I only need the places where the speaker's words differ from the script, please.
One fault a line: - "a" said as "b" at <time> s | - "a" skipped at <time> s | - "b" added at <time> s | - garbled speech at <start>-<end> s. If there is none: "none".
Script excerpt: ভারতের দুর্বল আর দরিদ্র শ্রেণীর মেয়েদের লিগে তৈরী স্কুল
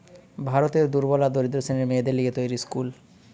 none